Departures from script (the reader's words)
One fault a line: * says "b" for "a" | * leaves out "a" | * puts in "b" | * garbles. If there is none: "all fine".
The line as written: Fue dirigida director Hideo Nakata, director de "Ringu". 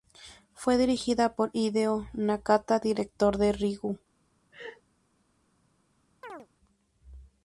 * says "por" for "director"